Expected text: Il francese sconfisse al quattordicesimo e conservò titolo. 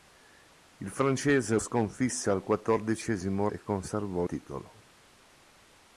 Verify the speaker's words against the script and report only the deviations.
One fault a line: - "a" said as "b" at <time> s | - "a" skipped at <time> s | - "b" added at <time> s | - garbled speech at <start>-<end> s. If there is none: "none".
none